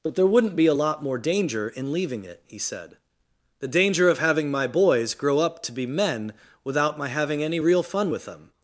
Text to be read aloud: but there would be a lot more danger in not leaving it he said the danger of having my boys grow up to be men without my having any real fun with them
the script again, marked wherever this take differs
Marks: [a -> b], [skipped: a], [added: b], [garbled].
but there [would -> wouldn't] be a lot more danger in [skipped: not] leaving it he said the danger of having my boys grow up to be men without my having any real fun with them